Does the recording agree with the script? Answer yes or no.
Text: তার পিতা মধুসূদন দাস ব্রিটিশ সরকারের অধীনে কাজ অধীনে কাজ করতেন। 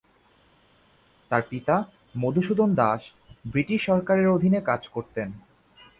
no